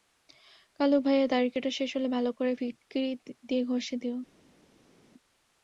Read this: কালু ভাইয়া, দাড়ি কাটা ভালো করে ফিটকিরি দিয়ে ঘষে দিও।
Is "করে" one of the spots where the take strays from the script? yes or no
no